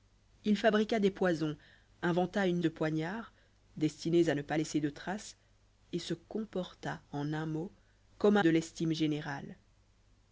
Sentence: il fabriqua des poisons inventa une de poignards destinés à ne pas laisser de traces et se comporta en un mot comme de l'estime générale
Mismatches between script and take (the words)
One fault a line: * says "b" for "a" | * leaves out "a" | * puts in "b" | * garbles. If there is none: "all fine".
all fine